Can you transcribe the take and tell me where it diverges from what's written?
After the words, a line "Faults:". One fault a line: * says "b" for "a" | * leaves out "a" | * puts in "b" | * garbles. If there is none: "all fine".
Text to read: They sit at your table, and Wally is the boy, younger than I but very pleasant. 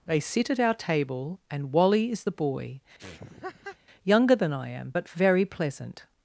They sit at our table, and Wally is the boy, younger than I am, but very pleasant.
Faults:
* says "our" for "your"
* puts in "am"